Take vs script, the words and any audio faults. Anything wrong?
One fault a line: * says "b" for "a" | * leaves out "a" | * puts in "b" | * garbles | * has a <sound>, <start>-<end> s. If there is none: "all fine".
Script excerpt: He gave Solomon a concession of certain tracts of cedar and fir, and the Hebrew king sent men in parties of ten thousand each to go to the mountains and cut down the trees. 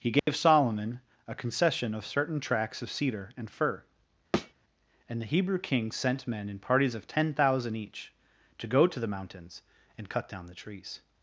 * has a dropout, 0.2-0.3 s
* has a thud, 4.3-4.5 s